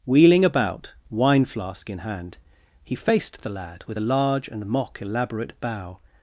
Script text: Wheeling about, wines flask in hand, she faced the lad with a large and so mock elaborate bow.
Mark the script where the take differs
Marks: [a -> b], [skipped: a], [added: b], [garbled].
Wheeling about, [wines -> wine] flask in hand, [she -> he] faced the lad with a large and [skipped: so] mock elaborate bow.